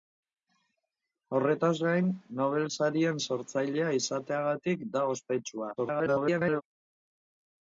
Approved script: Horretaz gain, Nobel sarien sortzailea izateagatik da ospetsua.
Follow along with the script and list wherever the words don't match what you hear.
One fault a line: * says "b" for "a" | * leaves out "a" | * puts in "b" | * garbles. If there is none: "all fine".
* garbles